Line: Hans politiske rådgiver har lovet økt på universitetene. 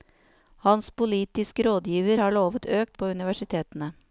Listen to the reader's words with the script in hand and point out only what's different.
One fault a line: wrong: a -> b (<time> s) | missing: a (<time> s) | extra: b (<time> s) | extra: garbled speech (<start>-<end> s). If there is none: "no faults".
no faults